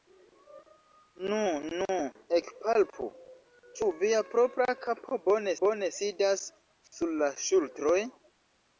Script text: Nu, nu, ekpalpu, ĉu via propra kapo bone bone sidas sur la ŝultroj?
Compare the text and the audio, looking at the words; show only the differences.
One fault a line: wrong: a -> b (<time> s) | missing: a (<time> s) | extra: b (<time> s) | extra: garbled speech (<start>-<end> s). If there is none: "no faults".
no faults